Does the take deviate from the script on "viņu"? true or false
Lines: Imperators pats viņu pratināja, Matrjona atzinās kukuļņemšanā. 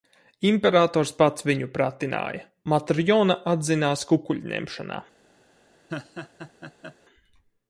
false